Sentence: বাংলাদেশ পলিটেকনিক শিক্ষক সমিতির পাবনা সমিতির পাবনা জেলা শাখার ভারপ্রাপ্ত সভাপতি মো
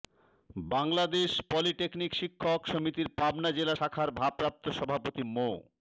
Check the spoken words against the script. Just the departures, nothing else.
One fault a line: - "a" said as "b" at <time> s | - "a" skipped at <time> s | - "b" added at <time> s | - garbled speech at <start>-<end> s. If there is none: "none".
- "সমিতির পাবনা" skipped at 3.5 s